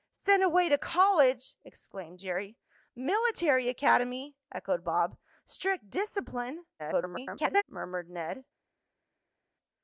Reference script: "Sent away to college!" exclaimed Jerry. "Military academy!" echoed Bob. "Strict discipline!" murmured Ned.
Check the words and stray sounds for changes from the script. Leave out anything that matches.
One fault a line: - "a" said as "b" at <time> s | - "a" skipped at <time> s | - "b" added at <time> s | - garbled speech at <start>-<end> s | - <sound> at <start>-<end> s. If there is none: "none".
- garbled speech at 6.8-7.6 s